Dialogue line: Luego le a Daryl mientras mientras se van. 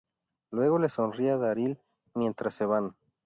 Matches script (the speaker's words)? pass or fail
fail